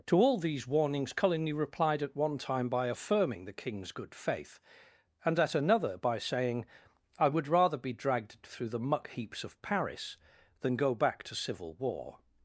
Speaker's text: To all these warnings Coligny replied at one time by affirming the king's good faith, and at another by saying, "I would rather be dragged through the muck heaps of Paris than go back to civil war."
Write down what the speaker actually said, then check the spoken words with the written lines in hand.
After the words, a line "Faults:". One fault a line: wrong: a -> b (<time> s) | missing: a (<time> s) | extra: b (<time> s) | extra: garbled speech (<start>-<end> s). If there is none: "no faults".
To all these warnings Coligny replied at one time by affirming the king's good faith, and at another by saying, "I would rather be dragged through the muck heaps of Paris than go back to civil war."
Faults:
no faults